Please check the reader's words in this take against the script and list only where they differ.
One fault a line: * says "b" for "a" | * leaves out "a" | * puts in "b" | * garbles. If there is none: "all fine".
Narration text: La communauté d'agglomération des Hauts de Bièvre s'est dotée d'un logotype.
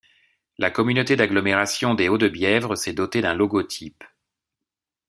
all fine